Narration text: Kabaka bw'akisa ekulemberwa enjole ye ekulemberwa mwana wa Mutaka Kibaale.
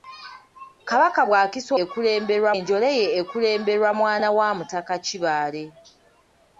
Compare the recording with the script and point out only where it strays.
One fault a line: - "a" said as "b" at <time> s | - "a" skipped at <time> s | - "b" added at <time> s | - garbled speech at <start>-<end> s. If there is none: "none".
none